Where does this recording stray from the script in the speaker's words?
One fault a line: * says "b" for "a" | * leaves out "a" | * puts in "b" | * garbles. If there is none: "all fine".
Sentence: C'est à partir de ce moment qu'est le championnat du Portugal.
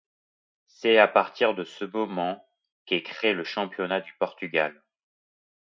* puts in "créé"